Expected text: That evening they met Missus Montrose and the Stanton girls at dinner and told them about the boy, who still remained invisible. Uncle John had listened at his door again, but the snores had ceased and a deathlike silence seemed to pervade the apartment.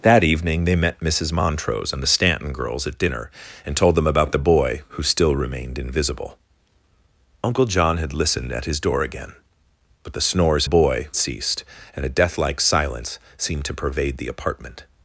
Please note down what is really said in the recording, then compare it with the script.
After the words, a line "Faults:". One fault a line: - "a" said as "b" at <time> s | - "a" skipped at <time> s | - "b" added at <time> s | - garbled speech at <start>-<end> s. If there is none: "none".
That evening they met Missus Montrose and the Stanton girls at dinner and told them about the boy, who still remained invisible. Uncle John had listened at his door again, but the snores boy ceased and a deathlike silence seemed to pervade the apartment.
Faults:
- "had" said as "boy" at 10.6 s